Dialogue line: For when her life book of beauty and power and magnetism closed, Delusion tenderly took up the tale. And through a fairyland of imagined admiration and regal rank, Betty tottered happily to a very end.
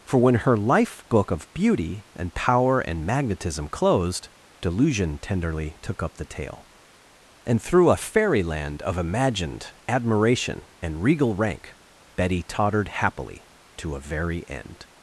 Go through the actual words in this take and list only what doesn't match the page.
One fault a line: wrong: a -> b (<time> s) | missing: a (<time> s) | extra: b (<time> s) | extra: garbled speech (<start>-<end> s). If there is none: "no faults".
no faults